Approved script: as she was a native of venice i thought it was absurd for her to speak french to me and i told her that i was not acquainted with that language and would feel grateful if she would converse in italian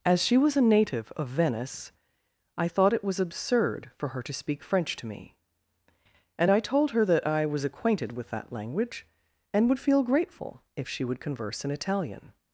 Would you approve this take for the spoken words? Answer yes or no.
no